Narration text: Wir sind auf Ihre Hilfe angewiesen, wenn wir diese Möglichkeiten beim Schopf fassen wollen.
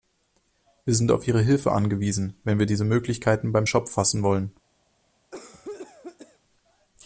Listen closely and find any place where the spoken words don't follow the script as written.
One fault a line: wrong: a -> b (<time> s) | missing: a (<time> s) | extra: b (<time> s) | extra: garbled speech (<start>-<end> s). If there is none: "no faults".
no faults